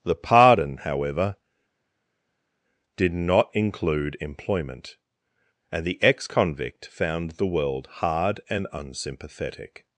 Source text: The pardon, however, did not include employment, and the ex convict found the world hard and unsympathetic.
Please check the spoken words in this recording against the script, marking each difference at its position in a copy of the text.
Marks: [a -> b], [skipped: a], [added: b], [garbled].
The pardon, however, did not include employment, and the ex convict found the world hard and unsympathetic.